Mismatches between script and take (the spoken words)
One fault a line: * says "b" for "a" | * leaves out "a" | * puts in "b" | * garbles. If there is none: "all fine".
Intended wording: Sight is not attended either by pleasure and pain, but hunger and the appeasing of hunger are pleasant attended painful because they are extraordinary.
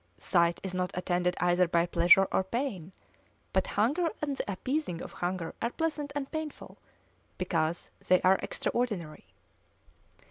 * says "or" for "and"
* says "and" for "attended"